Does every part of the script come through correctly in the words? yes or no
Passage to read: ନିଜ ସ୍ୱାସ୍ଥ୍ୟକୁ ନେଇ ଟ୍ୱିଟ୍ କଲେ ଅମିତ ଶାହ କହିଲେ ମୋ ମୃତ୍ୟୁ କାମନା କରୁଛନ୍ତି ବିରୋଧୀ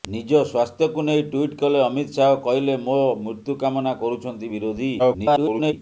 no